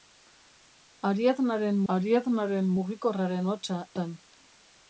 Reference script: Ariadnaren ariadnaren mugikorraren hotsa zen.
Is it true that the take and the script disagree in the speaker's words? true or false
false